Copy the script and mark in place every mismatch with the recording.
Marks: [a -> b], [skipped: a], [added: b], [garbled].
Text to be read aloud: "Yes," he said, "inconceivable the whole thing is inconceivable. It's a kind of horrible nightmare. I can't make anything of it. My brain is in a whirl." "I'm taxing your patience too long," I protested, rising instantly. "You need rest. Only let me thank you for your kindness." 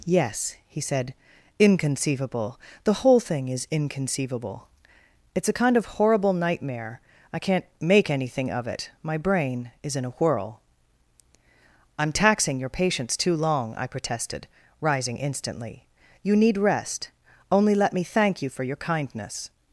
"Yes," he said, "inconceivable the whole thing is inconceivable. It's a kind of horrible nightmare. I can't make anything of it. My brain is in a whirl." "I'm taxing your patience too long," I protested, rising instantly. "You need rest. Only let me thank you for your kindness."